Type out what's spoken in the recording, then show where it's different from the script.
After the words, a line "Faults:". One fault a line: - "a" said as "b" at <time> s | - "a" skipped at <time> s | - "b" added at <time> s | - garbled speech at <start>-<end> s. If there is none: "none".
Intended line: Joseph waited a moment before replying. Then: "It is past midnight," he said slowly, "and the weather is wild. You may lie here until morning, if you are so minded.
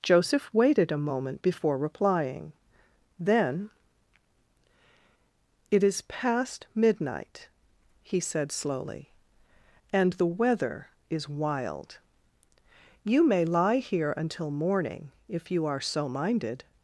Joseph waited a moment before replying. Then: "It is past midnight," he said slowly, "and the weather is wild. You may lie here until morning, if you are so minded.
Faults:
none